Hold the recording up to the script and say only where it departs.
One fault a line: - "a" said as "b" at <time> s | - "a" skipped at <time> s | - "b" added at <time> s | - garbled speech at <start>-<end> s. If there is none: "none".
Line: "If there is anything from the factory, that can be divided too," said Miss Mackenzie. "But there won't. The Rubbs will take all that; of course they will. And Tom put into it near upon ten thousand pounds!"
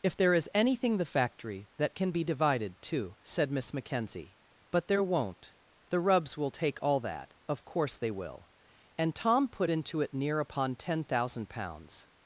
- "from" skipped at 1.0 s